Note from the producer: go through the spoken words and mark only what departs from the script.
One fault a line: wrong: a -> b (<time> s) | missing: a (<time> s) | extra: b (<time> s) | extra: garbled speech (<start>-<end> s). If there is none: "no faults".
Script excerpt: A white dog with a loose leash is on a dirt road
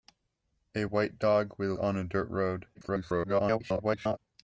missing: loose leash is (1.7 s)
extra: garbled speech (2.7-4.2 s)